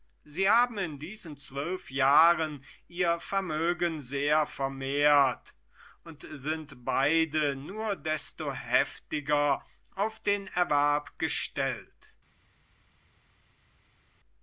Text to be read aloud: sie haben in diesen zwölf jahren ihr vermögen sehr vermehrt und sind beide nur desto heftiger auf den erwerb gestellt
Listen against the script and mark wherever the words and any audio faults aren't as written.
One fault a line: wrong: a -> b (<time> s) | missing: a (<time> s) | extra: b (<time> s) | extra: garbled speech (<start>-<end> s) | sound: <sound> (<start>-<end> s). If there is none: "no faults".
no faults